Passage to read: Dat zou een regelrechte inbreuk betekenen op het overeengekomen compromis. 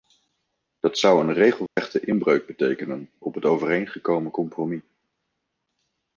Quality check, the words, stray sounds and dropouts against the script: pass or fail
fail